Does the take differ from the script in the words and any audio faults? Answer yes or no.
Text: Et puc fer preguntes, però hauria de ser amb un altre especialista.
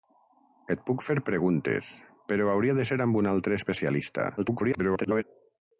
yes